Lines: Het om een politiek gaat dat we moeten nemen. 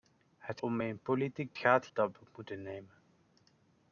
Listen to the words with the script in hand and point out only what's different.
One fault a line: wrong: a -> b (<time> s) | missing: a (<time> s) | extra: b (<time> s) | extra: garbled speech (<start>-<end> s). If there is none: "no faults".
no faults